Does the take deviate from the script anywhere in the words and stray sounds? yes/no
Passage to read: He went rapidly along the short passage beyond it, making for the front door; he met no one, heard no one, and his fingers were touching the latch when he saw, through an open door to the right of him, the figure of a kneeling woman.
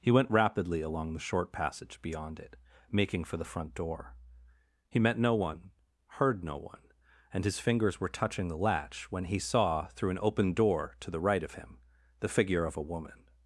yes